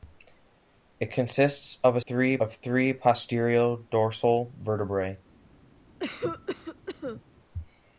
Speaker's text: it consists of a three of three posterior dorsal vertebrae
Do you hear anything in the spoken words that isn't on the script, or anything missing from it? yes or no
no